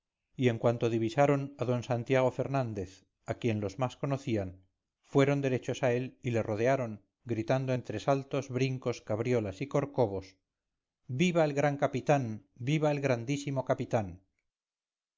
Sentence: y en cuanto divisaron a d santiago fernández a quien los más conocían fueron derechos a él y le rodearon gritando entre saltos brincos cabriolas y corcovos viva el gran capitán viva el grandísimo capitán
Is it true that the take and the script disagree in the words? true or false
false